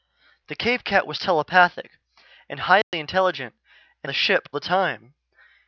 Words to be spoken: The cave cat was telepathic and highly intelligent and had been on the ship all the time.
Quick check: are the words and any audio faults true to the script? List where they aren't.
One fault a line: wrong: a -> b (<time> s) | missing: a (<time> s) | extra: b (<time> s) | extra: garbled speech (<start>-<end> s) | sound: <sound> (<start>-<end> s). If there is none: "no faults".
sound: dropout (2.8-2.9 s)
missing: had been on (4.1 s)
missing: all (4.5 s)